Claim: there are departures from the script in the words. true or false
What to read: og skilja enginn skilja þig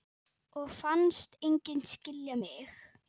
true